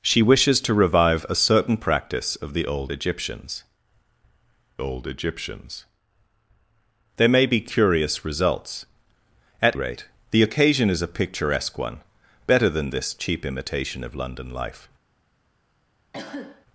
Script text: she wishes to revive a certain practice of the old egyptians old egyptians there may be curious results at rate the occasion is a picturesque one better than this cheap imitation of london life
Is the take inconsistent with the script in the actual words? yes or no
no